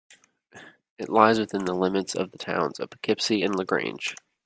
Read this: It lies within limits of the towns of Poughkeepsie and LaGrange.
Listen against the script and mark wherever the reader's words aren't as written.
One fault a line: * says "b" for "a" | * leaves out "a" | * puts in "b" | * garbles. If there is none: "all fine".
* puts in "the"